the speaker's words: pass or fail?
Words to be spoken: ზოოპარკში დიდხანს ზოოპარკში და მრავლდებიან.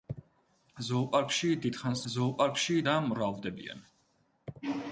pass